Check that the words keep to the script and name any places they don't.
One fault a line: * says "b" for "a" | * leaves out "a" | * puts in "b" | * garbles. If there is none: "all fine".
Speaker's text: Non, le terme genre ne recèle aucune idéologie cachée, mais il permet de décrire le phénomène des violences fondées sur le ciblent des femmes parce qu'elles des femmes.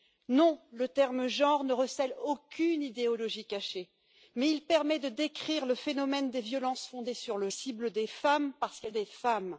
all fine